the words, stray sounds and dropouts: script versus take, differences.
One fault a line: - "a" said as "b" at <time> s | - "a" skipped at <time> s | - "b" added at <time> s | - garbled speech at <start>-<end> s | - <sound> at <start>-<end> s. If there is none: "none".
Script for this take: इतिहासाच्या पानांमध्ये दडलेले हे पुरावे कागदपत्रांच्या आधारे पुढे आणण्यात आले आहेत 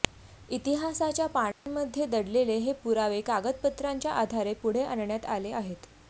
- dropout at 1.5-1.7 s